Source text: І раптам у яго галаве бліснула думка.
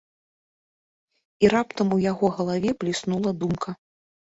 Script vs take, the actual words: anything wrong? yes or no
no